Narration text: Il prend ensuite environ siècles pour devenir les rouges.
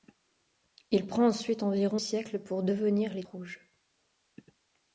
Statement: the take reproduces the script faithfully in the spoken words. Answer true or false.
true